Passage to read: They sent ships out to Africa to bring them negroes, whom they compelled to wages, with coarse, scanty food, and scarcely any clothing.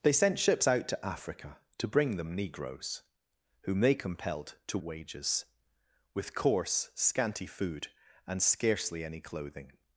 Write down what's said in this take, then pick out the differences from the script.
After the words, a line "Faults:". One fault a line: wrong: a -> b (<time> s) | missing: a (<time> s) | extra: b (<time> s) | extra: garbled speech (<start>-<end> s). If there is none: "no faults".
They sent ships out to Africa to bring them negroes, whom they compelled to wages, with coarse, scanty food, and scarcely any clothing.
Faults:
no faults